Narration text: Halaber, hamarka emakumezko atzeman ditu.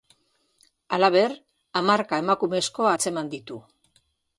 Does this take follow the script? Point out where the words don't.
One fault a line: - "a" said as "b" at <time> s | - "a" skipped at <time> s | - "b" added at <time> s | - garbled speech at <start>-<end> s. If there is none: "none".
none